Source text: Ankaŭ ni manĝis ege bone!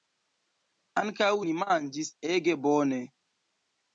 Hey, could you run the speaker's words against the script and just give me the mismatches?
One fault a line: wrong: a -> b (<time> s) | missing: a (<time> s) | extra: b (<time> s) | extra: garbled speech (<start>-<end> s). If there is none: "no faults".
no faults